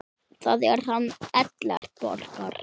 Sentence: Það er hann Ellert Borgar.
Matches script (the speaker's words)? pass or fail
pass